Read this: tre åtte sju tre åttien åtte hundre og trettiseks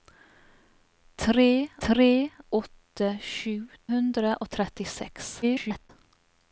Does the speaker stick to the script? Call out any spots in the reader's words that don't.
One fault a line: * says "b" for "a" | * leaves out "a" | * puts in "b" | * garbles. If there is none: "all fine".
* puts in "tre"
* leaves out "tre åttien åtte"
* garbles